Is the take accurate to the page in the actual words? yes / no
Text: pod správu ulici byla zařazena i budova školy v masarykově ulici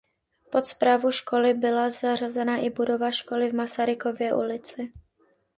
no